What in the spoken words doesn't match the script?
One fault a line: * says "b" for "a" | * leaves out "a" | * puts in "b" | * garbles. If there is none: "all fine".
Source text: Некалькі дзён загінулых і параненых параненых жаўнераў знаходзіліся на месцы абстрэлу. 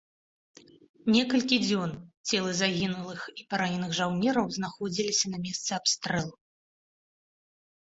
* puts in "целы"
* leaves out "параненых"